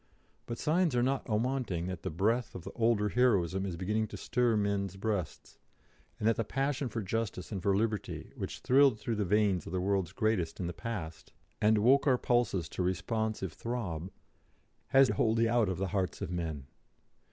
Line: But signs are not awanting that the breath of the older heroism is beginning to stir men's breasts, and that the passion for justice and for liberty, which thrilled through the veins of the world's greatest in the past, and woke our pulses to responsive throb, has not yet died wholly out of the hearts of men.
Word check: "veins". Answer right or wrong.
right